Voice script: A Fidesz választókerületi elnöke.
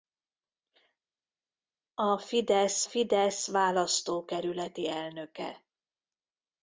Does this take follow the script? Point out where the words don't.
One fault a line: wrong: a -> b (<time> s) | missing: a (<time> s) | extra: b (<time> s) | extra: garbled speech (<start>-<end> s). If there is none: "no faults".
extra: Fidesz (2.8 s)